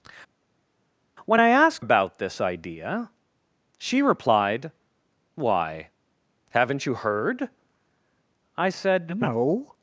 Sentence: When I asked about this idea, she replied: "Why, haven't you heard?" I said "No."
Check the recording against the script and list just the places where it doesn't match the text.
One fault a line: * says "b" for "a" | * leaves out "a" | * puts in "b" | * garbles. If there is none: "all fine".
all fine